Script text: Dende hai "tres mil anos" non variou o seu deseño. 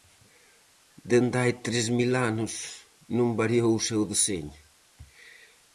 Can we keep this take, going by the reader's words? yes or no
yes